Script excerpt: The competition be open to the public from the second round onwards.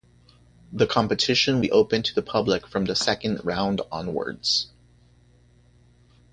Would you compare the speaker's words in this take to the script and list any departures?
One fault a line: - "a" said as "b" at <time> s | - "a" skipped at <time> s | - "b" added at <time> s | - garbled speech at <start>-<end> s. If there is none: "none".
none